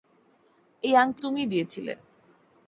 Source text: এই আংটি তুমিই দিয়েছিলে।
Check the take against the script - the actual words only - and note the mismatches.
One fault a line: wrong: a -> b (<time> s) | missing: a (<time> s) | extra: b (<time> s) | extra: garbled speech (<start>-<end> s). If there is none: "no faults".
no faults